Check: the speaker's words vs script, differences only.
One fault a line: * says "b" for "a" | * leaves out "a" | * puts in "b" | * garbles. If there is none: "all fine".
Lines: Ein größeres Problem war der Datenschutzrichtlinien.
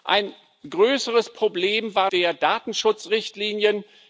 all fine